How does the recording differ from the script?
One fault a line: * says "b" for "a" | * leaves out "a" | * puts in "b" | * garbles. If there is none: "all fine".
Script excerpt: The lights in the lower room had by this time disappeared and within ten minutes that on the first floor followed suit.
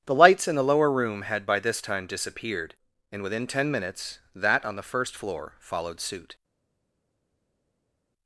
all fine